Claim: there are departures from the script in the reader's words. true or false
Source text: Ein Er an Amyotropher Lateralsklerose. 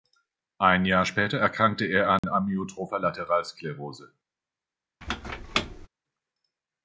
true